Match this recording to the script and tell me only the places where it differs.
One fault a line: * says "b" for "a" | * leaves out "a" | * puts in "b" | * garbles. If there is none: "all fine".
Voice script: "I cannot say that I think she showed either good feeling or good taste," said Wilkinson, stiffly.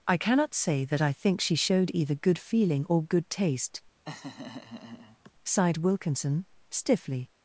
* says "sighed" for "said"